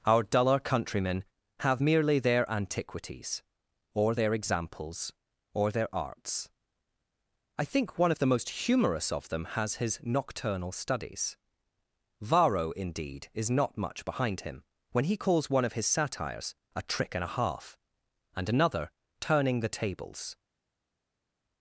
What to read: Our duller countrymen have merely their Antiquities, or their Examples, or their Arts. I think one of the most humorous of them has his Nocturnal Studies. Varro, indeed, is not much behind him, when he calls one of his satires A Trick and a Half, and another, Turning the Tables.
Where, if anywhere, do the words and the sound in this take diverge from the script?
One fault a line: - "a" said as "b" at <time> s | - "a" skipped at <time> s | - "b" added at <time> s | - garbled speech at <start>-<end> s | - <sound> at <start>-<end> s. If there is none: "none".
none